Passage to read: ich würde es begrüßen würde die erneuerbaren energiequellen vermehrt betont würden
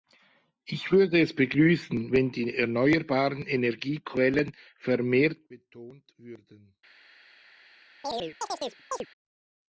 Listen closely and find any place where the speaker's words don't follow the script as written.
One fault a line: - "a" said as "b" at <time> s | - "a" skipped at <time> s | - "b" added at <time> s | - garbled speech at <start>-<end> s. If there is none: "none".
- "würde" said as "wenn" at 2.1 s